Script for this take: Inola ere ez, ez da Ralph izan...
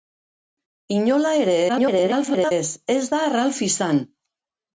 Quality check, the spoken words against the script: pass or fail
fail